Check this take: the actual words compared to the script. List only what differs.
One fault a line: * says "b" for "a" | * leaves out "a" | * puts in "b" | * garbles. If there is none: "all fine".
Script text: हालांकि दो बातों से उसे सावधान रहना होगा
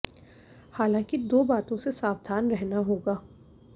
* leaves out "से"